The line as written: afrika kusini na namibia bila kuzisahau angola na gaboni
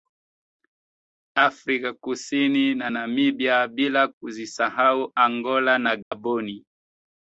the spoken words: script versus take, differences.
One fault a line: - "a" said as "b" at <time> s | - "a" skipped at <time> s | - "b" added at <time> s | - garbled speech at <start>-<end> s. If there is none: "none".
none